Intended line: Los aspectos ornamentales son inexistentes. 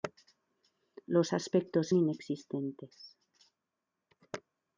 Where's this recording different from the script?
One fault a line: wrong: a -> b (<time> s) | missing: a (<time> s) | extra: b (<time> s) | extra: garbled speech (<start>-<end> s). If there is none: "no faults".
missing: ornamentales son (1.9 s)